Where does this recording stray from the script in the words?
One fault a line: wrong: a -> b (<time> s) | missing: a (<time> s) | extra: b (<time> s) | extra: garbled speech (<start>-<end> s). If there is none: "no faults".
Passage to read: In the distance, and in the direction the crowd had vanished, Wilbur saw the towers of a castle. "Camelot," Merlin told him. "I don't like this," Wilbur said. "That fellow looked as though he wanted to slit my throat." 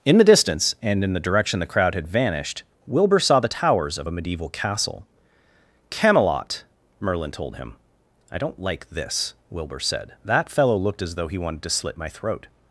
extra: medieval (4.1 s)